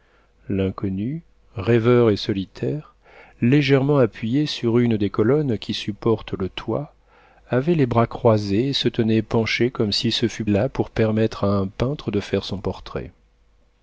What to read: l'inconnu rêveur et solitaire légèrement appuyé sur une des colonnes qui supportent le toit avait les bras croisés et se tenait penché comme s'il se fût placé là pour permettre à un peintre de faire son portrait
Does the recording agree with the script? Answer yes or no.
no